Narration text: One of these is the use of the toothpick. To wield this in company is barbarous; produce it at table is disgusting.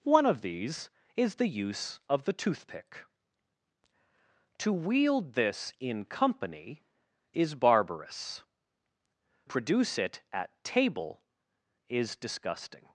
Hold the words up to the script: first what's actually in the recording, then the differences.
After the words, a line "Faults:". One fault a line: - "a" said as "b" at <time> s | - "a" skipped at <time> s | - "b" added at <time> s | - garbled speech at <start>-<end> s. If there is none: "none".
One of these is the use of the toothpick. To wield this in company is barbarous; produce it at table is disgusting.
Faults:
none